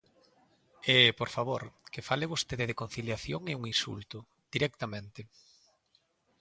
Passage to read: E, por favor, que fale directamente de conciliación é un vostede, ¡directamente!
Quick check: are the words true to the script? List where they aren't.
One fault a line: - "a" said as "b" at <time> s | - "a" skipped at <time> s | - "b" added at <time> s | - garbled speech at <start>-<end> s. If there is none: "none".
- "directamente" said as "vostede" at 2.3 s
- "vostede" said as "insulto" at 3.7 s